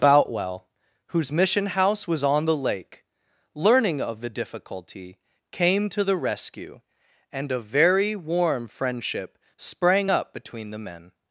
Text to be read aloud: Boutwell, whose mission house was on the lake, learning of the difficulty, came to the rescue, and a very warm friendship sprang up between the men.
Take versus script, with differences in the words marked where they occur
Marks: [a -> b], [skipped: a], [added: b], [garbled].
Boutwell, whose mission house was on the lake, learning of the difficulty, came to the rescue, and a very warm friendship sprang up between the men.